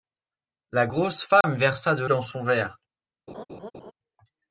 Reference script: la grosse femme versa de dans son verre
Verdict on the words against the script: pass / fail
pass